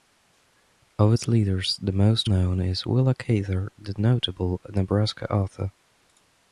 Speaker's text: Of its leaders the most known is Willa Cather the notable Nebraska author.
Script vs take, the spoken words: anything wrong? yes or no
no